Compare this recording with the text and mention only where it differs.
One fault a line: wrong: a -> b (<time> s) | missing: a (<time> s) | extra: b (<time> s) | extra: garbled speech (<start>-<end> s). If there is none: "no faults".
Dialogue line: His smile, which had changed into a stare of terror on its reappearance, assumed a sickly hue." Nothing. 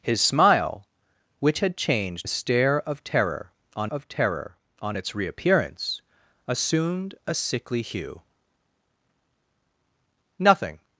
missing: into (2.3 s)
extra: of terror on (3.9 s)